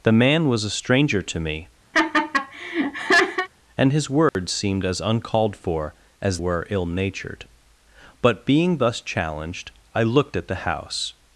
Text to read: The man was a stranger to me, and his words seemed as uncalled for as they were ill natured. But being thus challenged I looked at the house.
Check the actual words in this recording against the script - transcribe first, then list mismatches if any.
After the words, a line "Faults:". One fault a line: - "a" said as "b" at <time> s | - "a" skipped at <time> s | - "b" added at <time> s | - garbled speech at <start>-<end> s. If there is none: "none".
The man was a stranger to me, and his words seemed as uncalled for as were ill natured. But being thus challenged I looked at the house.
Faults:
- "they" skipped at 6.4 s